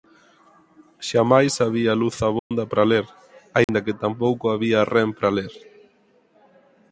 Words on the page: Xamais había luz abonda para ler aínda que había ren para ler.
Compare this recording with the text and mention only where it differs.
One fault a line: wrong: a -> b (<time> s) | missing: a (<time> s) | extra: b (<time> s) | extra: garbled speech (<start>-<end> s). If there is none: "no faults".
extra: tampouco (4.0 s)